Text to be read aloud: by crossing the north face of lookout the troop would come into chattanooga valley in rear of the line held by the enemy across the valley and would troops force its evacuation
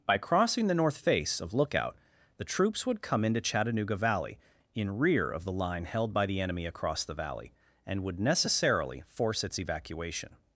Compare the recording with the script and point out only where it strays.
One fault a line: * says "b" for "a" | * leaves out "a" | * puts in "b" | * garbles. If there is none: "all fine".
* says "troops" for "troop"
* says "necessarily" for "troops"